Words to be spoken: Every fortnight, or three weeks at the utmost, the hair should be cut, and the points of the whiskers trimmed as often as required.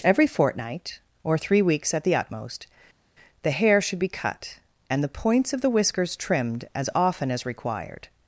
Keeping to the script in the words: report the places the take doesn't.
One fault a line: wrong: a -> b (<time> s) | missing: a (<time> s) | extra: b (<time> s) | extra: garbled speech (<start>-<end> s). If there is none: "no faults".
no faults